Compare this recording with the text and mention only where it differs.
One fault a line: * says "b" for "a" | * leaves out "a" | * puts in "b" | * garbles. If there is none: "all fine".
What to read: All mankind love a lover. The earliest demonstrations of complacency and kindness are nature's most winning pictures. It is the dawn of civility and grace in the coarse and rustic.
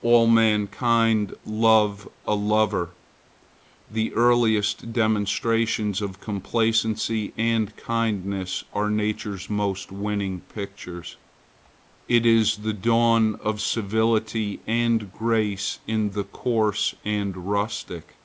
all fine